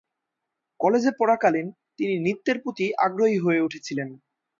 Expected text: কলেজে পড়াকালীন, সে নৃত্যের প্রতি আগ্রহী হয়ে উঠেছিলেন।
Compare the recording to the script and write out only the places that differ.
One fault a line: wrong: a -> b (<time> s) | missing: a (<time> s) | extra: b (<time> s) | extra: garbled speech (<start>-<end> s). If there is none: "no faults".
wrong: সে -> তিনি (2.0 s)